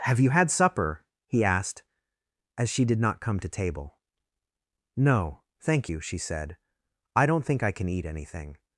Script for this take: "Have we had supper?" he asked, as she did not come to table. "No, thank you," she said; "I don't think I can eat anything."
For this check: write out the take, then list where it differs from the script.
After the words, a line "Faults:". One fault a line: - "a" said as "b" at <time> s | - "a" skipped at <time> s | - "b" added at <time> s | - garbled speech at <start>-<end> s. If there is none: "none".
"Have you had supper?" he asked, as she did not come to table. "No, thank you," she said; "I don't think I can eat anything."
Faults:
- "we" said as "you" at 0.2 s